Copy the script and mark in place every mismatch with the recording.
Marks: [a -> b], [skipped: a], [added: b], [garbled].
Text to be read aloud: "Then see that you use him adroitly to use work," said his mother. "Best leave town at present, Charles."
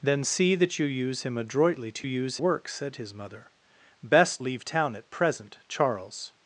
"Then see that you use him adroitly to use work," said his mother. "Best leave town at present, Charles."